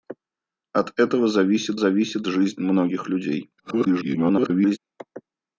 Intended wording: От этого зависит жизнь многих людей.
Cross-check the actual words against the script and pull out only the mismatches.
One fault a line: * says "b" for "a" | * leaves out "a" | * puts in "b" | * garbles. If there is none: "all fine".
* puts in "зависит"
* garbles